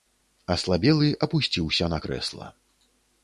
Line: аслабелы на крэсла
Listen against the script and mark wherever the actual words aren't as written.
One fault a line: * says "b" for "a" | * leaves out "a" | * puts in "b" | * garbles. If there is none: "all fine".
* puts in "апусціўся"